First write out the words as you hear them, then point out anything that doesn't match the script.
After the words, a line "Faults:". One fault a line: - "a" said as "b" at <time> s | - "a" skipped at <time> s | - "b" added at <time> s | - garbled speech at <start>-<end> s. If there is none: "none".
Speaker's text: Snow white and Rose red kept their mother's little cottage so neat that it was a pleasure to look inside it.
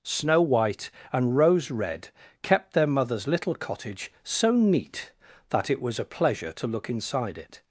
Snow white and Rose red kept their mother's little cottage so neat that it was a pleasure to look inside it.
Faults:
none